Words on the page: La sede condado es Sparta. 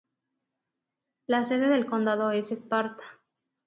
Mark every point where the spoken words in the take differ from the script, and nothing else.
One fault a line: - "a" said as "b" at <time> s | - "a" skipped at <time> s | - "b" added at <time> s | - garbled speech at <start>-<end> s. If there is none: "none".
- "del" added at 1.7 s